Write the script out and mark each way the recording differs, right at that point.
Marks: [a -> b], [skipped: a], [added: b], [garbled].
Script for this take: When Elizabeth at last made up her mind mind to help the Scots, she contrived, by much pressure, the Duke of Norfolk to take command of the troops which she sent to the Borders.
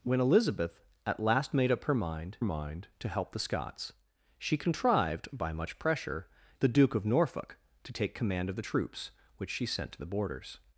When Elizabeth at last made up her mind mind to help the Scots, she contrived, by much pressure, the Duke of Norfolk to take command of the troops which she sent to the Borders.